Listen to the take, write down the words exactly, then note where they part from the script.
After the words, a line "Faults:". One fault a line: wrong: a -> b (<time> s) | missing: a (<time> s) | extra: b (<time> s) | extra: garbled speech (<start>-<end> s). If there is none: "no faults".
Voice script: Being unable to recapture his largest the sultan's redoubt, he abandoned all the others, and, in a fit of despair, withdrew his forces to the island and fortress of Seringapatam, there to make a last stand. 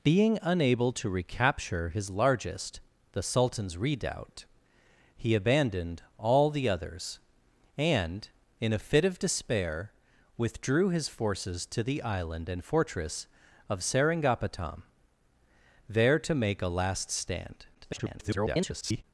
Being unable to recapture his largest the sultan's redoubt, he abandoned all the others, and, in a fit of despair, withdrew his forces to the island and fortress of Seringapatam, there to make a last stand. [garbled]
Faults:
extra: garbled speech (17.7-19.0 s)